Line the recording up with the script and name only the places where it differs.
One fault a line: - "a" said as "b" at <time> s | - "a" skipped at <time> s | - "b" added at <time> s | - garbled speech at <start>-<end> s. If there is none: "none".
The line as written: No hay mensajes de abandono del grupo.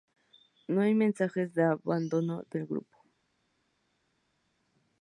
none